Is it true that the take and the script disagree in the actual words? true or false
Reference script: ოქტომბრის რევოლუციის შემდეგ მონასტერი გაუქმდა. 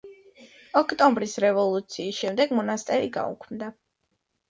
false